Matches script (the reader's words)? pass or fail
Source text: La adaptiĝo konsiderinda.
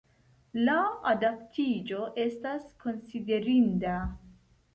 fail